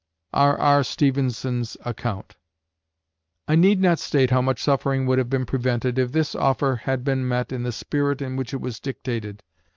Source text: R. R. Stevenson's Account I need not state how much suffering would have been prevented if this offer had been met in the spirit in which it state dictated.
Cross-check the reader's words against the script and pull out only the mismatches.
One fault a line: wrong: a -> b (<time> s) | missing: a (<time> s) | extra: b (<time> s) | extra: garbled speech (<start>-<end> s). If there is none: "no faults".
wrong: state -> was (8.6 s)